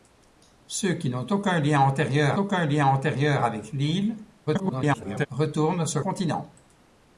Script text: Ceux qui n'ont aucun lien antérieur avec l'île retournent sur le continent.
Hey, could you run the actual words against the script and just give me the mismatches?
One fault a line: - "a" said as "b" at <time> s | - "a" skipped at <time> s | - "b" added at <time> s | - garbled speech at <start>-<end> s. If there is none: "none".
- "aucun lien antérieur" added at 2.3 s
- garbled speech at 4.5-5.3 s
- "le" skipped at 6.0 s